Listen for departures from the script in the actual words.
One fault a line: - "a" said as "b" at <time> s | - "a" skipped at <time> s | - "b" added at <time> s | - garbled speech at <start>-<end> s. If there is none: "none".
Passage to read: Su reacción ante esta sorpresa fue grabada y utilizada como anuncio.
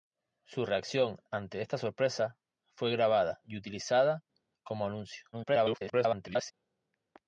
- garbled speech at 5.3-6.5 s